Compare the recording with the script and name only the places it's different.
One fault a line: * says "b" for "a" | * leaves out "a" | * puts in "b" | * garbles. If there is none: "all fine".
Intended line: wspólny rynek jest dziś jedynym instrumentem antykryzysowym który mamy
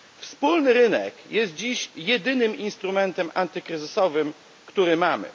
all fine